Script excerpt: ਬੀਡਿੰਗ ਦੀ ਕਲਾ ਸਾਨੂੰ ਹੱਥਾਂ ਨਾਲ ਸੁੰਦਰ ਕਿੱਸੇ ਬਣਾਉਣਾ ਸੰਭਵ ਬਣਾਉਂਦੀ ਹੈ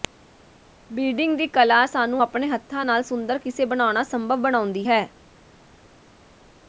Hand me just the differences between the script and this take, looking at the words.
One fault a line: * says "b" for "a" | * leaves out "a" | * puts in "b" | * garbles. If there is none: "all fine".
* puts in "ਆਪਣੇ"